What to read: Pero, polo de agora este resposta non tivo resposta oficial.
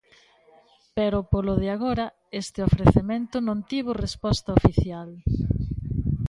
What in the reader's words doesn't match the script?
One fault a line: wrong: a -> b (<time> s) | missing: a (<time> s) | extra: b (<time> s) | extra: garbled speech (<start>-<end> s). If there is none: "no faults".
wrong: resposta -> ofrecemento (2.7 s)